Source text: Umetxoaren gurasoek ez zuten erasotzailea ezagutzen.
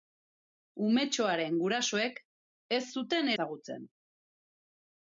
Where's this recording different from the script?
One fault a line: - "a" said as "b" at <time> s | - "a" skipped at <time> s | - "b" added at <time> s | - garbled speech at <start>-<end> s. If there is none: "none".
- "erasotzailea" skipped at 3.3 s